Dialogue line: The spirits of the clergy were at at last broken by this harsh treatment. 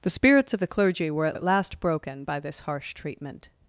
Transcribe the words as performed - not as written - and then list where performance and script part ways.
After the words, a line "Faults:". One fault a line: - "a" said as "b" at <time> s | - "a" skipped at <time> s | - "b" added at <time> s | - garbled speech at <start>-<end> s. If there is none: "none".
The spirits of the clergy were at at last broken by this harsh treatment.
Faults:
none